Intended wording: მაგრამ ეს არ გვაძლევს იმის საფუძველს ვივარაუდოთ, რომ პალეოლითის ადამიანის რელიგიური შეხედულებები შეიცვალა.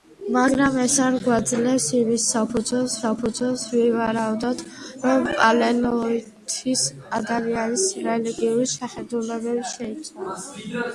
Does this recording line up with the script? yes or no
no